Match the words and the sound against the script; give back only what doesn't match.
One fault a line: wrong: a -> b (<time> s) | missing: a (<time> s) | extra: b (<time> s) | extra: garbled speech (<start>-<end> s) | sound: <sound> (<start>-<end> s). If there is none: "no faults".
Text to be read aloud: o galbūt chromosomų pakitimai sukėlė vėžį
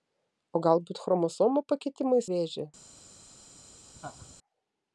missing: sukėlė (2.2 s)
sound: laugh (4.0-4.3 s)